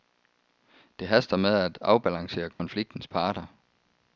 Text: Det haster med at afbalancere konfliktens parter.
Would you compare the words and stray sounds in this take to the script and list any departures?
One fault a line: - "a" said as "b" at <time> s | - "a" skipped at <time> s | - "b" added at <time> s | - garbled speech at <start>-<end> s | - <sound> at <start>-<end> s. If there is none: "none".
- dropout at 2.5-2.6 s